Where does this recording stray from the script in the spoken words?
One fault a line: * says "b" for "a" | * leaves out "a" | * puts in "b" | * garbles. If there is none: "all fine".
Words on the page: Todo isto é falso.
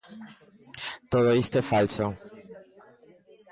all fine